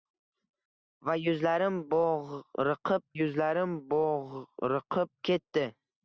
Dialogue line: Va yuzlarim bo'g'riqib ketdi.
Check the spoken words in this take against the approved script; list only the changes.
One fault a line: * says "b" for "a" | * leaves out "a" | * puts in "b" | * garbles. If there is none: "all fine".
* puts in "yuzlarim bo'g'riqib"